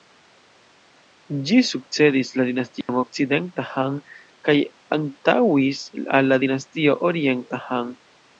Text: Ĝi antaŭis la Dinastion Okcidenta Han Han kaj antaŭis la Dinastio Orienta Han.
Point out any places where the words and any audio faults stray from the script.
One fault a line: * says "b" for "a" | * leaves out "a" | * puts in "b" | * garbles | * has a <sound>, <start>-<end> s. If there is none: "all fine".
* says "sukcedis" for "antaŭis"
* has a dropout, 2.8-2.9 s
* leaves out "Han"
* puts in "al"